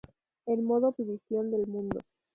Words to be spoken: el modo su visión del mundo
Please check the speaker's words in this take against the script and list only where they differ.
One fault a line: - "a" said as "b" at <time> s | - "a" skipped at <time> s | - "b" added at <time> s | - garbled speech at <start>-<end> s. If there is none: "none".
none